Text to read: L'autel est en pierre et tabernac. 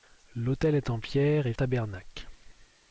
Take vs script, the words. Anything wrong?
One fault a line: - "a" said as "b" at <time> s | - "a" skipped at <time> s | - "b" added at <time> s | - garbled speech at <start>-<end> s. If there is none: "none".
none